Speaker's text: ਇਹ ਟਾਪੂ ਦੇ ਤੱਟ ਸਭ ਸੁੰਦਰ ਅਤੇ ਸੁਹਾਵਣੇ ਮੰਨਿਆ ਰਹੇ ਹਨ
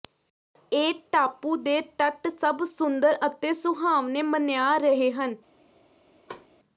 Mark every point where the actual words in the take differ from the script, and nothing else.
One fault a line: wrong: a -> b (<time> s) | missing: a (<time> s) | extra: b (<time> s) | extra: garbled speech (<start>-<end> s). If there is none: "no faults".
no faults